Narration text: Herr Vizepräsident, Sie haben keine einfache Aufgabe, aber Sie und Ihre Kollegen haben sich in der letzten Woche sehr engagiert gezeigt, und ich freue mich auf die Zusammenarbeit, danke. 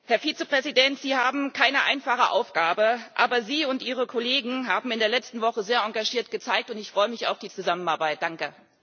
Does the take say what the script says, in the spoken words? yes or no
yes